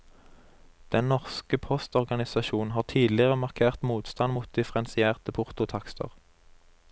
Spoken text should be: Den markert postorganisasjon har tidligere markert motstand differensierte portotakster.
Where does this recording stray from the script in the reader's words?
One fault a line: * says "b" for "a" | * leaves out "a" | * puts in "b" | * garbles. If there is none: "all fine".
* says "norske" for "markert"
* puts in "mot"